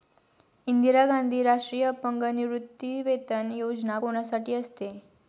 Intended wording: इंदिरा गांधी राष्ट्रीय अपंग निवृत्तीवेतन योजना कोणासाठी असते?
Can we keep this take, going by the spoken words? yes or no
yes